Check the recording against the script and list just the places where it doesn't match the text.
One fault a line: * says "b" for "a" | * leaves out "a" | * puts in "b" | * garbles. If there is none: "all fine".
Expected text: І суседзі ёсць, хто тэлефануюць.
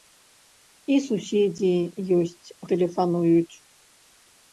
* leaves out "хто"